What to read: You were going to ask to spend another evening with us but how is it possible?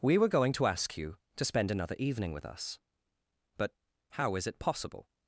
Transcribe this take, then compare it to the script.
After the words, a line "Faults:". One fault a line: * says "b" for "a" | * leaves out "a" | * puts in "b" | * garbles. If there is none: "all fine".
We were going to ask you to spend another evening with us but how is it possible?
Faults:
* says "We" for "You"
* puts in "you"